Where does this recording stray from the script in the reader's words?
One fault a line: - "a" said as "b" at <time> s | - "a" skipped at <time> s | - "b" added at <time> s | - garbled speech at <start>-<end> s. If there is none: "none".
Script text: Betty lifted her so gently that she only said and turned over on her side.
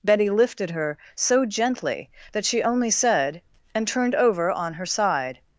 none